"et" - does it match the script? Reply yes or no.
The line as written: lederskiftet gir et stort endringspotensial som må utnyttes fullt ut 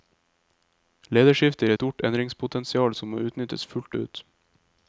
no